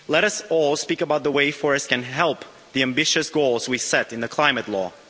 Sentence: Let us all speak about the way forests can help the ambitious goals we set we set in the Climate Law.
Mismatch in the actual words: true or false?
true